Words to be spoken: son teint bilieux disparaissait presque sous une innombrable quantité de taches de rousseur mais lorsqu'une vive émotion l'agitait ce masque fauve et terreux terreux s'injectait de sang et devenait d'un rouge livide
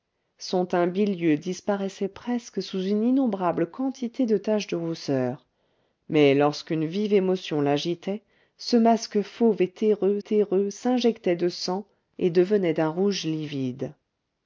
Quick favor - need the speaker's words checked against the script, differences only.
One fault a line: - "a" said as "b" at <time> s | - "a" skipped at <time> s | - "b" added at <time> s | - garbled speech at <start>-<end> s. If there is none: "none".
none